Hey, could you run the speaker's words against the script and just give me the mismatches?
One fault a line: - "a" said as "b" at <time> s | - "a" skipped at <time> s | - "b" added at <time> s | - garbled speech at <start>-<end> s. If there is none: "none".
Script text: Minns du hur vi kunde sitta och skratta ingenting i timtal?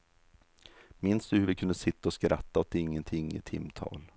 - "åt" added at 2.6 s